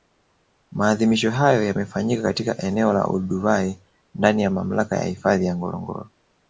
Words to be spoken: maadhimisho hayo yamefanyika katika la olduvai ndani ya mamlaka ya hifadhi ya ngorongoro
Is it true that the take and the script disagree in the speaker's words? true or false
true